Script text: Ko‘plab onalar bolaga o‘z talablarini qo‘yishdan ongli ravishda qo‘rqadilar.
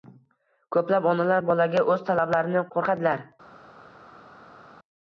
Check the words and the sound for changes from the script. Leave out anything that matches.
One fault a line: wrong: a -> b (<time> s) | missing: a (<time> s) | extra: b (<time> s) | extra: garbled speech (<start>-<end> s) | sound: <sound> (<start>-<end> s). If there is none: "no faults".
missing: qo‘yishdan ongli ravishda (2.6 s)